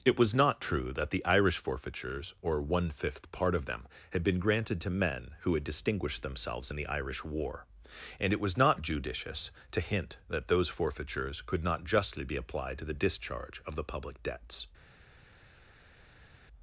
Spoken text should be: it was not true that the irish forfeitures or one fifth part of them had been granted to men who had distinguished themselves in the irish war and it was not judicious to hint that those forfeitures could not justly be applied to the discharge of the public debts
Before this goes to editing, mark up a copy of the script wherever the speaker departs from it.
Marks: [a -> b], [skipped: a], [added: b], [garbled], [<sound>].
it was not true that the irish forfeitures or one fifth part of them had been granted to men who had distinguished themselves in the irish war and it was not judicious to hint that those forfeitures could not justly be applied to the discharge of the public debts